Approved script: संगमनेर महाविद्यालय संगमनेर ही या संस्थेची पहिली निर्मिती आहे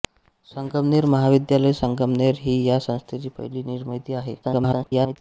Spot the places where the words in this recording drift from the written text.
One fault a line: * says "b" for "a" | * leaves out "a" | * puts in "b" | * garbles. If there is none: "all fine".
* garbles